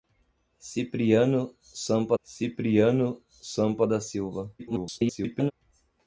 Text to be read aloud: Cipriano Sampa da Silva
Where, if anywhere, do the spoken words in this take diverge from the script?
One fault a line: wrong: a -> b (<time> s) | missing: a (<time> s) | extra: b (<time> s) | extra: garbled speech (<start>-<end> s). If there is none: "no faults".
extra: cipriano Sampa (2.2 s)
extra: garbled speech (4.6-5.5 s)